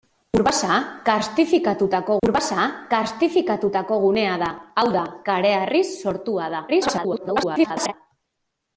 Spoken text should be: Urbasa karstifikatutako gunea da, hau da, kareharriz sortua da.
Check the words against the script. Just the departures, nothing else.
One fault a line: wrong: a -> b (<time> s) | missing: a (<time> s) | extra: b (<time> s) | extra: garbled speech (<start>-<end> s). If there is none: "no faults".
extra: urbasa karstifikatutako (2.2 s)
extra: garbled speech (6.7-7.9 s)